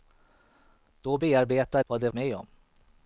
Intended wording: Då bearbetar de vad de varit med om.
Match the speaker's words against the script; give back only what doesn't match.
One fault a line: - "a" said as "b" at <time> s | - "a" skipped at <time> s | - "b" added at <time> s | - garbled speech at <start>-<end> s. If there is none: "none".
- "de" skipped at 1.8 s
- "varit" skipped at 2.1 s